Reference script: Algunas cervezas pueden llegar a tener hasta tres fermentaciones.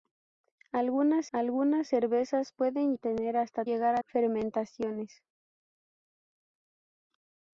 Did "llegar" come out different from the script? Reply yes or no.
yes